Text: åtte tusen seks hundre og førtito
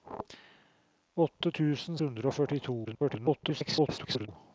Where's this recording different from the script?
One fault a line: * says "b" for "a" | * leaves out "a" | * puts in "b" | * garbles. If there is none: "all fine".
* leaves out "seks"
* garbles